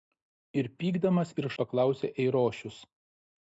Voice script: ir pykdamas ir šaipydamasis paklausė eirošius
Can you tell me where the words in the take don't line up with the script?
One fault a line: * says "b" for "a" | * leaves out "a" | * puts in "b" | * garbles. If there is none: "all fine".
* leaves out "šaipydamasis"